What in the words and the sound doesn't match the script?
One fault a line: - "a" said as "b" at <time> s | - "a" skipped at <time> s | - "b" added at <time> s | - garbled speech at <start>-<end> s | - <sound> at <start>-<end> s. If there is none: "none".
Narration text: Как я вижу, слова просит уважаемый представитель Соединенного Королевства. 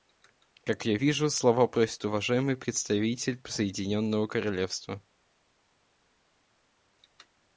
none